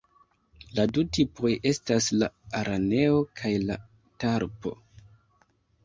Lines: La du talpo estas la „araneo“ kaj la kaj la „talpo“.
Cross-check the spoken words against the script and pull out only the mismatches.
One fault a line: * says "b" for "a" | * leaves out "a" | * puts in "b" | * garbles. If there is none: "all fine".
* says "tipoj" for "talpo"
* leaves out "kaj la"